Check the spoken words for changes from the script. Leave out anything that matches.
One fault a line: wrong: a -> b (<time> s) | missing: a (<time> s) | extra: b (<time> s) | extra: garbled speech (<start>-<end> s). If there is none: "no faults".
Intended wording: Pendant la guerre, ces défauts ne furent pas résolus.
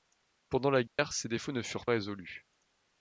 missing: pas (1.9 s)